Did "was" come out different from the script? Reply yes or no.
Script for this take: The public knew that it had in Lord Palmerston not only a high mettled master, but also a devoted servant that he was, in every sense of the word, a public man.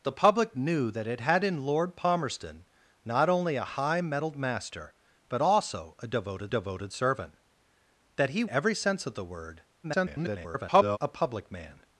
yes